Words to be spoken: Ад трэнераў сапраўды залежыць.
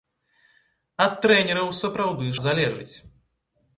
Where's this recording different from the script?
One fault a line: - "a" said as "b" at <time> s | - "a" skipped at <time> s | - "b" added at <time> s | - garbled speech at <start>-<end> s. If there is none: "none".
none